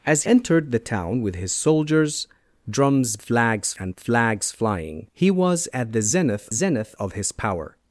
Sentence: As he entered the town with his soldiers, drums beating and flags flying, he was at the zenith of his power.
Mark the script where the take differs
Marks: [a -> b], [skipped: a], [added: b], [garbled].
As [skipped: he] entered the town with his soldiers, drums [beating -> flags] and flags flying, he was at the zenith [added: zenith] of his power.